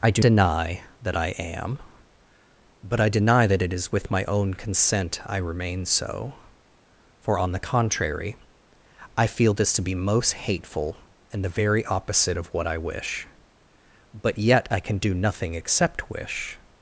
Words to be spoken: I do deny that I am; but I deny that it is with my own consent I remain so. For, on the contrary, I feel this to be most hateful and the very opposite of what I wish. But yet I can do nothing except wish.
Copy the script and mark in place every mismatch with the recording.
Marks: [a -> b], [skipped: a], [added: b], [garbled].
I do deny that I am; but I deny that it is with my own consent I remain so. For, on the contrary, I feel this to be most hateful and the very opposite of what I wish. But yet I can do nothing except wish.